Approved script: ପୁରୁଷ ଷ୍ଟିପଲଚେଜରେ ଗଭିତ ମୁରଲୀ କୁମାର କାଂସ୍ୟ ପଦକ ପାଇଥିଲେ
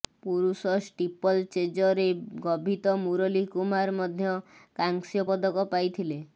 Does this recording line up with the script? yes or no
no